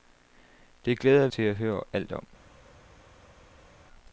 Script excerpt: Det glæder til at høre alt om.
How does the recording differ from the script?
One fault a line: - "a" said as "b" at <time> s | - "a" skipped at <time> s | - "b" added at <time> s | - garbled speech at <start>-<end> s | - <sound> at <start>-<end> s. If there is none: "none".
none